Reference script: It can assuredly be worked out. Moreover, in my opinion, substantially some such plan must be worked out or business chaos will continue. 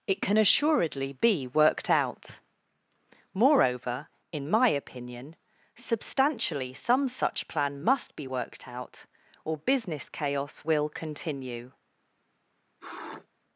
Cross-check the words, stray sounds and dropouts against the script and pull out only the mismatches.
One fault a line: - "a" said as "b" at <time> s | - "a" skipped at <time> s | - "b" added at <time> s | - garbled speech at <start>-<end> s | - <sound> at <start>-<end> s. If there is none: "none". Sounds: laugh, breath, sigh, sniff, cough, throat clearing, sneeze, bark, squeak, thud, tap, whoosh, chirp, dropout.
- sniff at 12.8-13.3 s